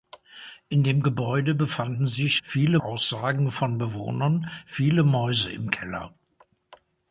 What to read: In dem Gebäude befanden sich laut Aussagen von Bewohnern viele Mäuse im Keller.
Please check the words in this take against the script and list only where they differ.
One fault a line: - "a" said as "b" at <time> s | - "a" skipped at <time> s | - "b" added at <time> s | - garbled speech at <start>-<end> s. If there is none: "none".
- "laut" said as "viele" at 2.4 s